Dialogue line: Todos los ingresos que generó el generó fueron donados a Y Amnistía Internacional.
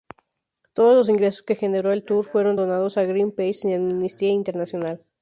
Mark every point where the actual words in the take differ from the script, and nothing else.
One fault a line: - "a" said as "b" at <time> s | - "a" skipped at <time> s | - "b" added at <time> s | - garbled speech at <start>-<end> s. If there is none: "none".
- "generó" said as "tour" at 2.0 s
- "Greenpeace" added at 3.0 s